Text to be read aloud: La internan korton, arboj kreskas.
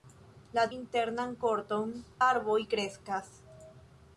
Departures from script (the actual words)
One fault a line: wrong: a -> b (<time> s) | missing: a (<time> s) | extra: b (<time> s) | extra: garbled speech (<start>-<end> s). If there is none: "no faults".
no faults